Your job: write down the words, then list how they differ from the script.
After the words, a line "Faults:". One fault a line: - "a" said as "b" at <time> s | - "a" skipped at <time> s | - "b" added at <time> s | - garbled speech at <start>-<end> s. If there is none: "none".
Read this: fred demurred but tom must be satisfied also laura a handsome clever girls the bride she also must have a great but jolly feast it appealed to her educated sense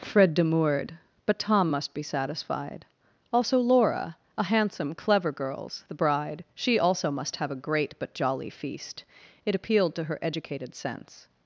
fred demurred but tom must be satisfied also laura a handsome clever girls the bride she also must have a great but jolly feast it appealed to her educated sense
Faults:
none